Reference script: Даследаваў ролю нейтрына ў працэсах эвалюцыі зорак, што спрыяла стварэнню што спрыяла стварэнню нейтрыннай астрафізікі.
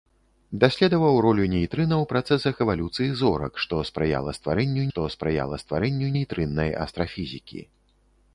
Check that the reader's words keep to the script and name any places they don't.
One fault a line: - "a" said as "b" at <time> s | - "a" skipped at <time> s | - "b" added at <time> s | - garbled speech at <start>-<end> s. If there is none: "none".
none